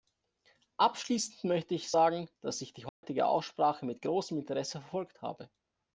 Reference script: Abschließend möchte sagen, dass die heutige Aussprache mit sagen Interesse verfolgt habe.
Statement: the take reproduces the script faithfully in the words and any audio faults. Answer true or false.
false